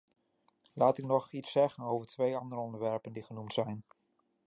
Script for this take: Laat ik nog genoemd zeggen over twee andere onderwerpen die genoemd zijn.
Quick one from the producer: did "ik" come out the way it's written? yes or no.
yes